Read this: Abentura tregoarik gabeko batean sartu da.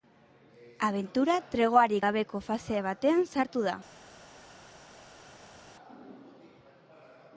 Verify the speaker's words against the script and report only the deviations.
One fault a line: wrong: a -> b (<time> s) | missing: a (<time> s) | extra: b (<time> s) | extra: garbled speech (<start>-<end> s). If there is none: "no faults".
extra: fase (2.5 s)